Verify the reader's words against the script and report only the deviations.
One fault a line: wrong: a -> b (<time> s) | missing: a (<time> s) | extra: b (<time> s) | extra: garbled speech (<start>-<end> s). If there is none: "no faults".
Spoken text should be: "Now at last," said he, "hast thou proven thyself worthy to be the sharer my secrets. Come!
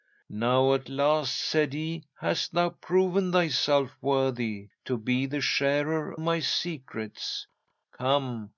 no faults